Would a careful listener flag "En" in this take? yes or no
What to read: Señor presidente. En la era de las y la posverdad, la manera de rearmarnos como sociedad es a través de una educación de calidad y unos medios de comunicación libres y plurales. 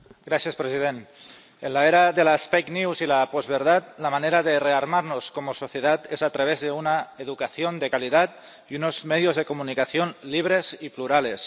no